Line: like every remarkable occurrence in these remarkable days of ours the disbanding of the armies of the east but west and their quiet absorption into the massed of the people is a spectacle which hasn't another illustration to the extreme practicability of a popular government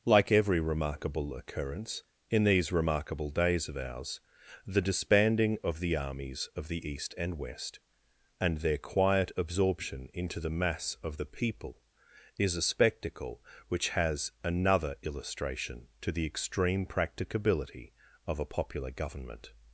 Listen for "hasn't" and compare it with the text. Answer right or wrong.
wrong